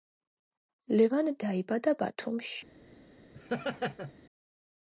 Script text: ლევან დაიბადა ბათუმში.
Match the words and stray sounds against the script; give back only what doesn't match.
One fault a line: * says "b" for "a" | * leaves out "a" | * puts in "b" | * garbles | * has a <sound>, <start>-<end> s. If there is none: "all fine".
* has a laugh, 3.3-4.1 s